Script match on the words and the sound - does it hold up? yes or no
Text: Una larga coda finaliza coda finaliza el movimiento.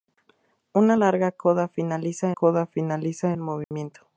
no